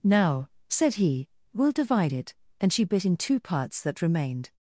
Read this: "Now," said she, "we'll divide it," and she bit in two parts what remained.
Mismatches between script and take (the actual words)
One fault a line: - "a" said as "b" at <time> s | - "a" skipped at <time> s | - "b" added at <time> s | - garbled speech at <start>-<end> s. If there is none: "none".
- "she" said as "he" at 0.9 s
- "what" said as "that" at 3.8 s